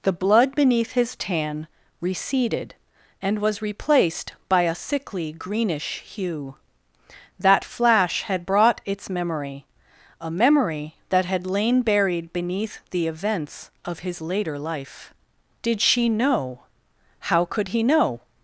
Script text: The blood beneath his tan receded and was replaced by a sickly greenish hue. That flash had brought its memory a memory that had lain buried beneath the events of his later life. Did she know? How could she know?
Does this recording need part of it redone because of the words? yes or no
yes